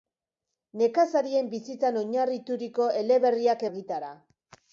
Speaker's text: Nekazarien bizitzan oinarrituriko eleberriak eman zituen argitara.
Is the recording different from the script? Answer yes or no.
yes